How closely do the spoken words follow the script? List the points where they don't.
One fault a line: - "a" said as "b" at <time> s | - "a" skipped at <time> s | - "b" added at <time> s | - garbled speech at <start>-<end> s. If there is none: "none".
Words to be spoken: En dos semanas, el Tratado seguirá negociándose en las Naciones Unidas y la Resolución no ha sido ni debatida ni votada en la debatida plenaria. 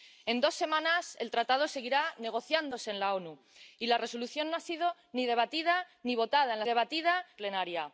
none